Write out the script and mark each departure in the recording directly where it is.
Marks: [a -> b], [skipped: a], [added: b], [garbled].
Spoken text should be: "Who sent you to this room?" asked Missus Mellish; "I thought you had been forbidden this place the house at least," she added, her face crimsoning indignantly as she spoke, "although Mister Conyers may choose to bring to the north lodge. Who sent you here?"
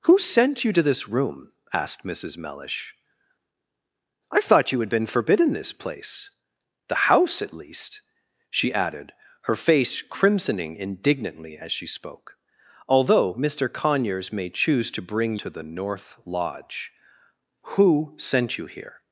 "Who sent you to this room?" asked Missus Mellish; "I thought you had been forbidden this place the house at least," she added, her face crimsoning indignantly as she spoke, "although Mister Conyers may choose to bring to the north lodge. Who sent you here?"